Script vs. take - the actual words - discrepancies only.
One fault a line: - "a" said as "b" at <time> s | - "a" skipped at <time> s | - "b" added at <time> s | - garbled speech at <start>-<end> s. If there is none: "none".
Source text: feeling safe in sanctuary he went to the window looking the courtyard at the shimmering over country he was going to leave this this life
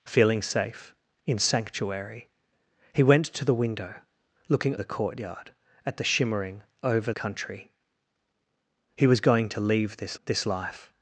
none